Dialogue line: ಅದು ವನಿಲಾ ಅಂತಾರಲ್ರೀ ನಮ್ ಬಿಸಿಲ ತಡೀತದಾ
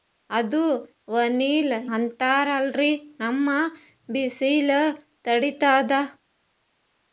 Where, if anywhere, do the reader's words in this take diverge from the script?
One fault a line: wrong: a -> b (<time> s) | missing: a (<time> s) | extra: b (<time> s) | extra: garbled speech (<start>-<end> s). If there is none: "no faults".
no faults